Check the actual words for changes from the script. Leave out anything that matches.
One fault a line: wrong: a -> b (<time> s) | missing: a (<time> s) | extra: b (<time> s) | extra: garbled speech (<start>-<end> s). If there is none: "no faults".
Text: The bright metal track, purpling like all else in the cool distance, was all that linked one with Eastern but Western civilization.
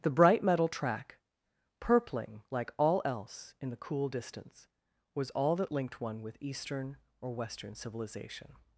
wrong: but -> or (7.2 s)